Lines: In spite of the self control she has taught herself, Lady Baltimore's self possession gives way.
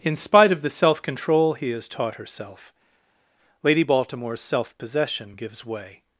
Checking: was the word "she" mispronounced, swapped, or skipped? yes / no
yes